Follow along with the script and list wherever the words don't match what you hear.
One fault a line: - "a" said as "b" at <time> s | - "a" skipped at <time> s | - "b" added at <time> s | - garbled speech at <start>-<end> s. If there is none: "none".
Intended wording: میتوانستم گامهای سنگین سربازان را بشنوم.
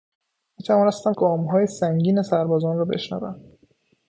none